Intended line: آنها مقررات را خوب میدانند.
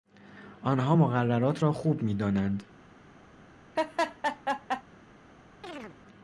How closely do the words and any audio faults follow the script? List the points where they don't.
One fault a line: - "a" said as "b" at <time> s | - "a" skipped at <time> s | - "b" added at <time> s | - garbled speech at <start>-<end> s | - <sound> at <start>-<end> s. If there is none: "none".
- laugh at 3.8-4.8 s
- chirp at 5.6-6.0 s